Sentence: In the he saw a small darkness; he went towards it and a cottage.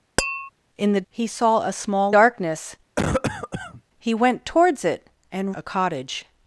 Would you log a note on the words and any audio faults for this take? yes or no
yes